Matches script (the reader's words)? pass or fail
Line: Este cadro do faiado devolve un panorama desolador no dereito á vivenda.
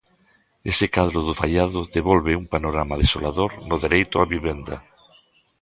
fail